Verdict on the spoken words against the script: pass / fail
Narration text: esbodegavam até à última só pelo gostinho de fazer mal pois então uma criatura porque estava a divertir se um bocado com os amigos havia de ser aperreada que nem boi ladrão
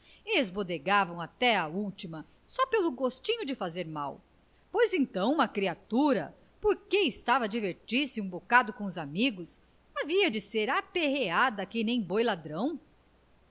pass